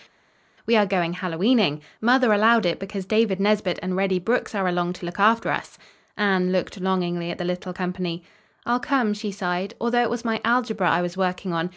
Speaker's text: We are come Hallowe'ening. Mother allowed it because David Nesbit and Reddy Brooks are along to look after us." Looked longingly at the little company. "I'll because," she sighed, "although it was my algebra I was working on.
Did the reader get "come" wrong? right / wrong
wrong